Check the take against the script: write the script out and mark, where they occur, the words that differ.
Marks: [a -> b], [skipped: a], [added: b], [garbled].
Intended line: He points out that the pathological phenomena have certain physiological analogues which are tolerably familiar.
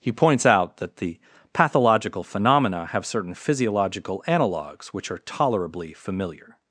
He points out that the pathological phenomena have certain physiological analogues which are tolerably familiar.